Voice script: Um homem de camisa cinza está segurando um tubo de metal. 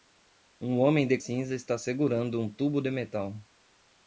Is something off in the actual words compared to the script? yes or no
yes